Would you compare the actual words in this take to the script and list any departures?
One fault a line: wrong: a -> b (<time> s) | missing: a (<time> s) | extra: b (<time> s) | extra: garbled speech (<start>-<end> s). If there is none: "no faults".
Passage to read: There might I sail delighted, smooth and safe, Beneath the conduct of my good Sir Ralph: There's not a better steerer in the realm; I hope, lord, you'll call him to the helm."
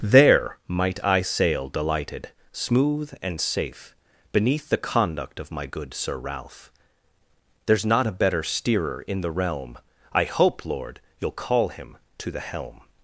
no faults